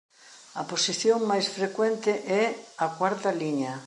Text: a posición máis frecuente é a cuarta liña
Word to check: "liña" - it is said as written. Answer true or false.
true